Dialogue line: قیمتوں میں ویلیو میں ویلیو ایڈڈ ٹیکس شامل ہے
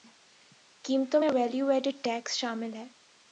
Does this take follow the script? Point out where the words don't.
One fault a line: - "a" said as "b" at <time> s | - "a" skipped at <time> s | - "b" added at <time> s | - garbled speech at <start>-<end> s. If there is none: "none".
- "میں ویلیو" skipped at 1.7 s